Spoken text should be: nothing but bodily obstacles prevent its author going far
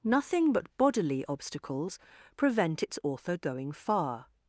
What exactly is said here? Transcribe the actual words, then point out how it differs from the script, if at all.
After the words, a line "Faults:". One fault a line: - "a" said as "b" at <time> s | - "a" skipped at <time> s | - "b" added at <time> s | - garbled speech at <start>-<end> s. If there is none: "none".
nothing but bodily obstacles prevent its author going far
Faults:
none